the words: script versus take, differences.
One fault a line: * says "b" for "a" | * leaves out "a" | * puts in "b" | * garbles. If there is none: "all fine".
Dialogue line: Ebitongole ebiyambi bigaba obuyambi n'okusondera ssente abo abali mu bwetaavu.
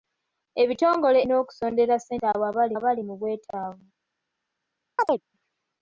* leaves out "ebiyambi bigaba obuyambi"
* puts in "abali"